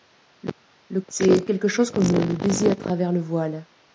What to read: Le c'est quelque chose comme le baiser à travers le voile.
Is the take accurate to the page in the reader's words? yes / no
yes